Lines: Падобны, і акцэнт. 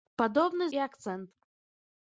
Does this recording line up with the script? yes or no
yes